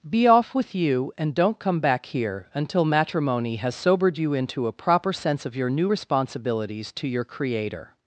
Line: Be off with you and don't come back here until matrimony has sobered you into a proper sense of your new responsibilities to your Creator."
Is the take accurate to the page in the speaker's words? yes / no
yes